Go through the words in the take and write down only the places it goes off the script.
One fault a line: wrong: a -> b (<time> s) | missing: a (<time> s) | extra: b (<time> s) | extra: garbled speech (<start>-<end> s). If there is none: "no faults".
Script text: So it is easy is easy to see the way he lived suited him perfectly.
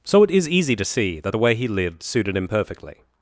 missing: is easy (0.8 s)
extra: that (1.2 s)